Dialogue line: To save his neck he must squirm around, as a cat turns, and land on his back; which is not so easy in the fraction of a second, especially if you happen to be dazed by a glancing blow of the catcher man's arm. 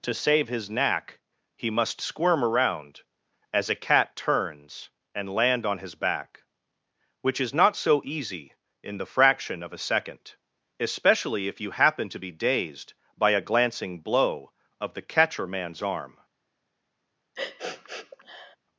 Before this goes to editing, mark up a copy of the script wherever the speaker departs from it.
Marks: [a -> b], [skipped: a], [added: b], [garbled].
To save his [neck -> knack] he must squirm around, as a cat turns, and land on his back; which is not so easy in the fraction of a second, especially if you happen to be dazed by a glancing blow of the catcher man's arm.